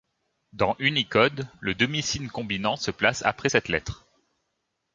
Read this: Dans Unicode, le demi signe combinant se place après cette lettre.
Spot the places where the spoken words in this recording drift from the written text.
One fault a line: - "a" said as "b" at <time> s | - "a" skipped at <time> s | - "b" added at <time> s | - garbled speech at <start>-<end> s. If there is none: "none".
none